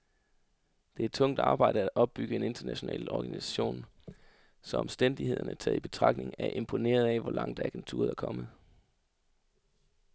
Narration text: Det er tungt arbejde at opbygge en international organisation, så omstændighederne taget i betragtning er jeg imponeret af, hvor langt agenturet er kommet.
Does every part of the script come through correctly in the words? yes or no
yes